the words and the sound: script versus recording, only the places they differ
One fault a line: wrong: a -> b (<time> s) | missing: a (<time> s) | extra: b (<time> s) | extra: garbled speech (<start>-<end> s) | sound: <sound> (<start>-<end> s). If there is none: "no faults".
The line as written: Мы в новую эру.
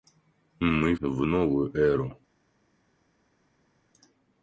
no faults